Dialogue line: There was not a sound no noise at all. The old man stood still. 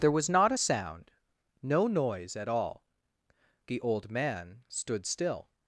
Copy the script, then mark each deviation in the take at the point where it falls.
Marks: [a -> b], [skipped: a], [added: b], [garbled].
There was not a sound no noise at all. The old man stood still.